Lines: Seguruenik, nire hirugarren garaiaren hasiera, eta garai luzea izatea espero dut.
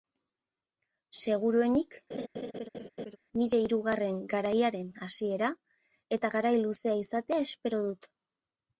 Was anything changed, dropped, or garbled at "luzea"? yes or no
no